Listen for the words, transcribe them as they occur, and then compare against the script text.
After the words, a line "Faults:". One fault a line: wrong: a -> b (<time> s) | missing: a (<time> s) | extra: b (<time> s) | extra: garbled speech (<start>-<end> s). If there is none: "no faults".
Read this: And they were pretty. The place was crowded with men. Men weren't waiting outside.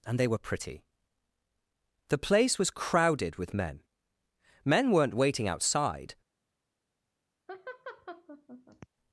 And they were pretty. The place was crowded with men. Men weren't waiting outside.
Faults:
no faults